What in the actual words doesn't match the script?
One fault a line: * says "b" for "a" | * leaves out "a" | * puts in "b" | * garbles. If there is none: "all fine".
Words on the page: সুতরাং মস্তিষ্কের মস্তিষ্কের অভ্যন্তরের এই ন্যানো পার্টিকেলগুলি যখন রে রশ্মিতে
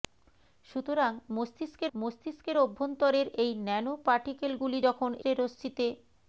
all fine